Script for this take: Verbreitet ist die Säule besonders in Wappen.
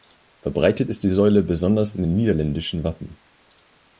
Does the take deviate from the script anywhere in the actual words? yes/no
yes